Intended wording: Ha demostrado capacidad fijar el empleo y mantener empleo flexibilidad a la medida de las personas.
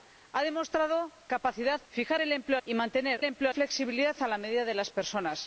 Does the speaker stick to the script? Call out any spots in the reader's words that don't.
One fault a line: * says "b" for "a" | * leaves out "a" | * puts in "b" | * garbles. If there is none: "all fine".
all fine